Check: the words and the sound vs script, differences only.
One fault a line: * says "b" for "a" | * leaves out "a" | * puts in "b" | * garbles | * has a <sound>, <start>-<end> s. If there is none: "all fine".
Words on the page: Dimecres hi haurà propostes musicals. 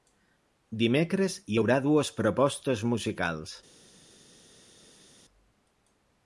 * puts in "dues"